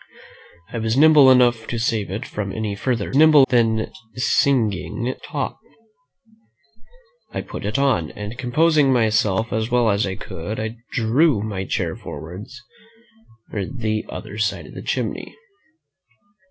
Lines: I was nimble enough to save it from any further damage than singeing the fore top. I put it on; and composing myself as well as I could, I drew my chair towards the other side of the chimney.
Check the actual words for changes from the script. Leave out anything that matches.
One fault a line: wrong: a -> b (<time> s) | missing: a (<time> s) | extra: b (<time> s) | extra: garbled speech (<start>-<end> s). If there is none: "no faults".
wrong: damage -> nimble (3.2 s)
missing: the fore (5.1 s)